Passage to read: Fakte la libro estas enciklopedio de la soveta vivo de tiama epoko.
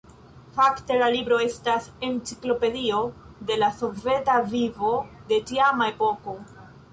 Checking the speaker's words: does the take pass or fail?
pass